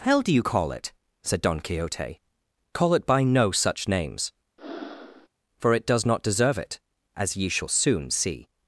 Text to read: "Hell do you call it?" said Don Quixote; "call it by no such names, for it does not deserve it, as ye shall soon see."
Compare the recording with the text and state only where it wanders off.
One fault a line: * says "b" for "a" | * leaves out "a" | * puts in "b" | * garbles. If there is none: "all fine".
all fine